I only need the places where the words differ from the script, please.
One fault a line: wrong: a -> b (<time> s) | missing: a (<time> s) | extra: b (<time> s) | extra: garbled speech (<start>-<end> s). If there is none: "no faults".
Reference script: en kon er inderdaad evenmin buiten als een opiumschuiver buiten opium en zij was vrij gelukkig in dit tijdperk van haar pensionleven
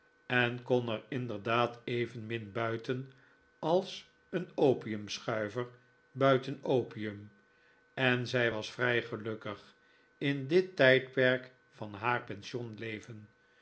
no faults